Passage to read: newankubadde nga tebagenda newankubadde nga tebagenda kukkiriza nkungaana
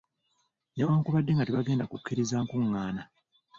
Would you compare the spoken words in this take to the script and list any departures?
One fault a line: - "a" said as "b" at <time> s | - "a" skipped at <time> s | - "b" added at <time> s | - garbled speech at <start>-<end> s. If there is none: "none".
- "newankubadde nga tebagenda" skipped at 1.9 s